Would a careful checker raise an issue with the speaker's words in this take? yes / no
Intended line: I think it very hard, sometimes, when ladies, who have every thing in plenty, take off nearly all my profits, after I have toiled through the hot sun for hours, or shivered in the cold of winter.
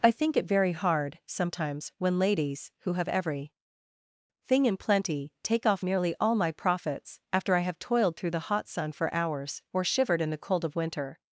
no